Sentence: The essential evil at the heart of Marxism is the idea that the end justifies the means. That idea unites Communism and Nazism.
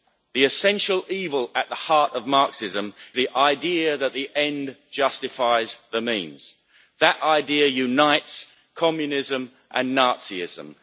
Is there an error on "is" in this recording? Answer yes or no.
yes